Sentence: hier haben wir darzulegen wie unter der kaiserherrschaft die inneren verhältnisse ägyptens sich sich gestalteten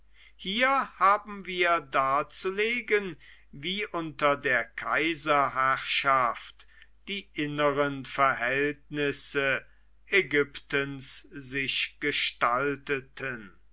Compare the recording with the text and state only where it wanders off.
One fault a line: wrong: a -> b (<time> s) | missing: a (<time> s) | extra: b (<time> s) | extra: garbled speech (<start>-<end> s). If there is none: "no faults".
missing: sich (12.0 s)